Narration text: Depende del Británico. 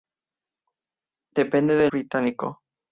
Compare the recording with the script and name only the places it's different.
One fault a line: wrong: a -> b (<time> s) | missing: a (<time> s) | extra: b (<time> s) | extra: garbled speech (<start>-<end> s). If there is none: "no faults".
no faults